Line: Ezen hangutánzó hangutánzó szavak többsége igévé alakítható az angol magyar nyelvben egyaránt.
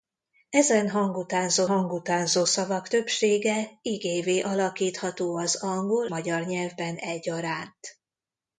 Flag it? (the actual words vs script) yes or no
no